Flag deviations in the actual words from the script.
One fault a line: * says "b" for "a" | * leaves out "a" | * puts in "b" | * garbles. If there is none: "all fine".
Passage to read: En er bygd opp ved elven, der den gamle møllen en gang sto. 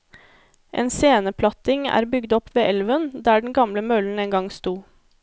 * puts in "sceneplatting"